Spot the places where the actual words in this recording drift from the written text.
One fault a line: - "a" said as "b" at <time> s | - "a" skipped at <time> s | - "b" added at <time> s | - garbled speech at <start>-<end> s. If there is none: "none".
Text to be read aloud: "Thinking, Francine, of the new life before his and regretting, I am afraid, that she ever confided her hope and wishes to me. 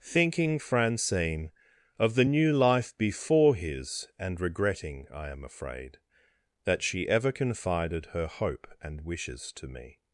none